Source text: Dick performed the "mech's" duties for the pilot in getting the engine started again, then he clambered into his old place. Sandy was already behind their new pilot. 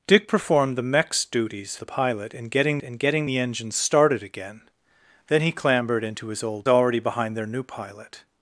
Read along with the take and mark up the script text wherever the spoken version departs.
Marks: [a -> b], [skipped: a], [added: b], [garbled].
Dick performed the "mech's" duties [skipped: for] the pilot in getting [added: in getting] the engine started again, then he clambered into his old [skipped: place. Sandy was] already behind their new pilot.